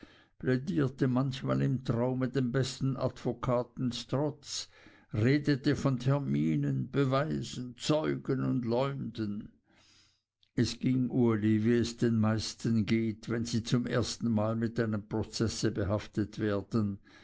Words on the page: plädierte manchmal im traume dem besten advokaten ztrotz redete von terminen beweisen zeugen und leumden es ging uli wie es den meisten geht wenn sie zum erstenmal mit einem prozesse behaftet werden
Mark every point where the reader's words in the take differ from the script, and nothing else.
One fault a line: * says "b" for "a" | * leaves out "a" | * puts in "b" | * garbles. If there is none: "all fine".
all fine